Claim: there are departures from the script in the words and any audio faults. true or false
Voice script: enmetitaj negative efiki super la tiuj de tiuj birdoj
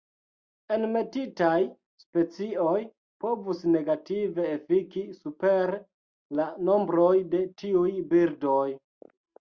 true